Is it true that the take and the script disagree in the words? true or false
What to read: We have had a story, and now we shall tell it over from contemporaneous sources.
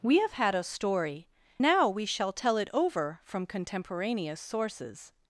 true